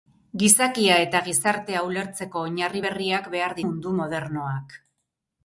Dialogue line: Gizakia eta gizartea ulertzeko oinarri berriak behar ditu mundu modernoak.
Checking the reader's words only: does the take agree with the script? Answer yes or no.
no